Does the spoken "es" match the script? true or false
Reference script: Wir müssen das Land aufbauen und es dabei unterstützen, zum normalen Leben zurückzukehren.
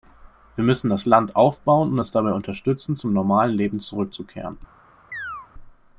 true